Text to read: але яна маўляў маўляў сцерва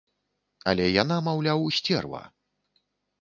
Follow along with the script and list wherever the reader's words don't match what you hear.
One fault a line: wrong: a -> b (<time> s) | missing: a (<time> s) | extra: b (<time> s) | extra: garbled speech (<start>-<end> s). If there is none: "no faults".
missing: маўляў (1.6 s)